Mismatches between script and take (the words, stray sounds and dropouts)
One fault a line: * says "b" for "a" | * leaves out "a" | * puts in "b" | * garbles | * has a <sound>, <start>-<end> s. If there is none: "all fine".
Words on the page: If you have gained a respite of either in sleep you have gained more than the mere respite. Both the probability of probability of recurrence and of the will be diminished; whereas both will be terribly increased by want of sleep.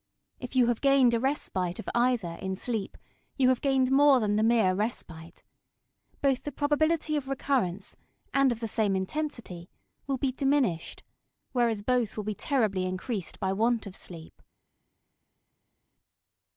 * leaves out "probability of"
* puts in "same intensity"